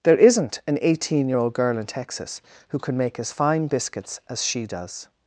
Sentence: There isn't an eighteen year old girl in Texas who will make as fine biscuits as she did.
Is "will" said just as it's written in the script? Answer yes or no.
no